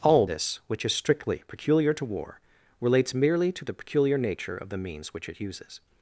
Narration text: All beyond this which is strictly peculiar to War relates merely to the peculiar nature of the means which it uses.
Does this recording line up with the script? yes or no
no